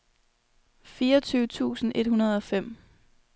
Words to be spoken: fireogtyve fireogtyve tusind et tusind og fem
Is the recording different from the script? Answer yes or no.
yes